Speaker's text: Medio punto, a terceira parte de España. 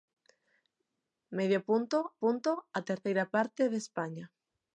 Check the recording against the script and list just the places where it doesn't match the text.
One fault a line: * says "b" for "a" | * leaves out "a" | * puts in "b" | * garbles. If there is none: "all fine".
* puts in "punto"